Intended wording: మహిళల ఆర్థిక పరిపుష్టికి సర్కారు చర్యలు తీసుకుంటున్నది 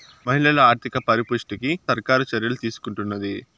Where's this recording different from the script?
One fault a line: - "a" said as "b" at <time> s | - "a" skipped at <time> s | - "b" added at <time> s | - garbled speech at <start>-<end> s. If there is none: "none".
none